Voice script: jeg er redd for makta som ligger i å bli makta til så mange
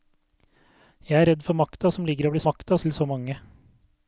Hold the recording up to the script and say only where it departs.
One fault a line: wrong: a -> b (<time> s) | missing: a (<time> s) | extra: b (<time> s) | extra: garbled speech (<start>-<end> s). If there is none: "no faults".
no faults